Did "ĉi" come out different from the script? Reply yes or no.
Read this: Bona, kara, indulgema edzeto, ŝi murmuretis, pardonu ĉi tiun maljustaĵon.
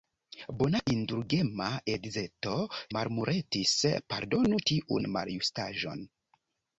yes